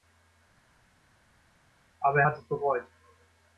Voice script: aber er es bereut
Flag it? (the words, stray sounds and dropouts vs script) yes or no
yes